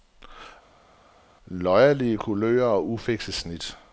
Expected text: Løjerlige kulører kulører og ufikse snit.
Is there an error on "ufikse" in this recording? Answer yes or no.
no